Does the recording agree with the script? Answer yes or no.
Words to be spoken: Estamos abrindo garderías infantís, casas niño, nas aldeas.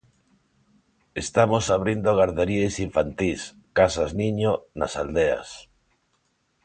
yes